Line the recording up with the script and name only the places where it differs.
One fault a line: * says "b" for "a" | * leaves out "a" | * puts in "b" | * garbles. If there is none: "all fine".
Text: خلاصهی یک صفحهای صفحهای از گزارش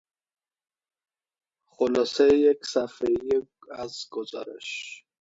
* leaves out "صفحهای"